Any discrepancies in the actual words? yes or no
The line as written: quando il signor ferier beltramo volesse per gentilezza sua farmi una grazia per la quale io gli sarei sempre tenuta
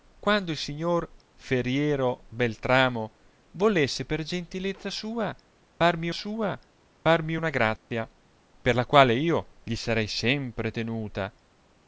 yes